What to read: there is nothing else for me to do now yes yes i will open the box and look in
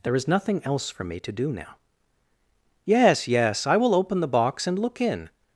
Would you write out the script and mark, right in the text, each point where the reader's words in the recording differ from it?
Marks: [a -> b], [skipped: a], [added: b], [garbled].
there is nothing else for me to do now yes yes i will open the box and look in